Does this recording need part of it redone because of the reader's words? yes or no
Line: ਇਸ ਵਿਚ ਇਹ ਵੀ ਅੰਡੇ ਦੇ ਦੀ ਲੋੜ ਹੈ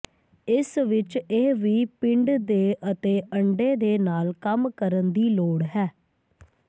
yes